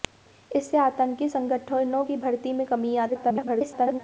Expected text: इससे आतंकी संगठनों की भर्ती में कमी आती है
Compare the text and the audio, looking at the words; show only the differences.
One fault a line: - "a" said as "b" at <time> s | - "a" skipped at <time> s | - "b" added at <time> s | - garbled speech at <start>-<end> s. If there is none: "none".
- garbled speech at 3.1-4.0 s